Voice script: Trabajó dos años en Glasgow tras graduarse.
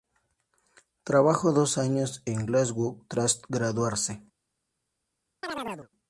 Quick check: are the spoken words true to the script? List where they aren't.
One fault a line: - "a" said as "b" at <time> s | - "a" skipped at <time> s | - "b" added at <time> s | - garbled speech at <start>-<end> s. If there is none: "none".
none